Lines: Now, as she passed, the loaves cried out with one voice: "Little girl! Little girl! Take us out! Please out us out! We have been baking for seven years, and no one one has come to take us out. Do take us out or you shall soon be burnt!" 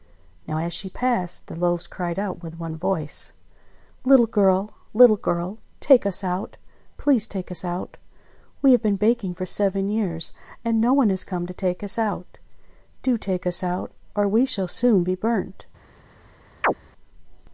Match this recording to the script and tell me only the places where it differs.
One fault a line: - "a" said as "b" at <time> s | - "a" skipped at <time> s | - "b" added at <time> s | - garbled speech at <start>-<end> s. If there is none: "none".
- "out" said as "take" at 7.3 s
- "one" skipped at 11.1 s
- "you" said as "we" at 14.3 s